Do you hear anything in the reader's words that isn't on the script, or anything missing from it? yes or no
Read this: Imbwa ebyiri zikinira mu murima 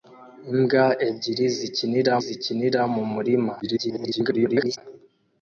yes